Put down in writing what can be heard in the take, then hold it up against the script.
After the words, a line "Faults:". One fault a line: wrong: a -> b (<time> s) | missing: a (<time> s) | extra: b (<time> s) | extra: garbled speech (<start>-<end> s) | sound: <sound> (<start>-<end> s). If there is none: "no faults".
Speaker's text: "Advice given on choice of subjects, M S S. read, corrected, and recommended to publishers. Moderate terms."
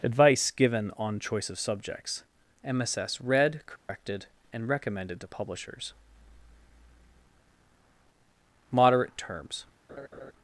"Advice given on choice of subjects, M S S. read, corrected, and recommended to publishers. Moderate terms."
Faults:
sound: dropout (3.8-3.9 s)
sound: laugh (9.9-10.3 s)